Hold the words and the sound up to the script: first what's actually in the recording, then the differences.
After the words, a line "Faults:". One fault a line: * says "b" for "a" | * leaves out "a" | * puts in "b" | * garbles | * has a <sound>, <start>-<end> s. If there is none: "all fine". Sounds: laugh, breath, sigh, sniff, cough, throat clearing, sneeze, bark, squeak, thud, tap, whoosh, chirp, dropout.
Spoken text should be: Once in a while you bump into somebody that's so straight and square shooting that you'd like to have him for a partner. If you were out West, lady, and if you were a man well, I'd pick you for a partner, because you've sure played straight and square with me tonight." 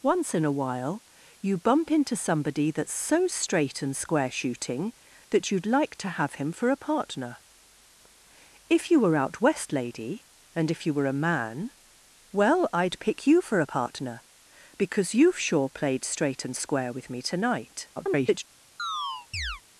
Once in a while you bump into somebody that's so straight and square shooting that you'd like to have him for a partner. If you were out West, lady, and if you were a man well, I'd pick you for a partner, because you've sure played straight and square with me tonight." [garbled]
Faults:
* garbles
* has a chirp, 18.8-19.6 s